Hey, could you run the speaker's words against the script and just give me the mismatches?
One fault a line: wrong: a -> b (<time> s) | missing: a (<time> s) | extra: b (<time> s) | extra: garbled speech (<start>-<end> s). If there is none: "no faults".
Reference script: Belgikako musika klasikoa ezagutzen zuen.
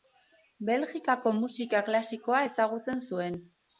no faults